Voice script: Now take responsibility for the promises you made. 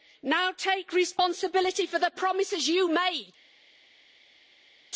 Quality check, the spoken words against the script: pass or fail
pass